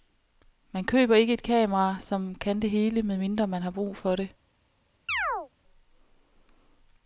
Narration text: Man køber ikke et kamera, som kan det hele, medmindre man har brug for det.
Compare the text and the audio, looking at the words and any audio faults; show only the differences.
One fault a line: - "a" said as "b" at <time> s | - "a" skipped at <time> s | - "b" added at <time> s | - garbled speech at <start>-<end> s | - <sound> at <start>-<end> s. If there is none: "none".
- chirp at 5.1-5.5 s